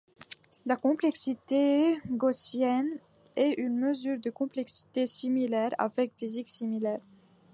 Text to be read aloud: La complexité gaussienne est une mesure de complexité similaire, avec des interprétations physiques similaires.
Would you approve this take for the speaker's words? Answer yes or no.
no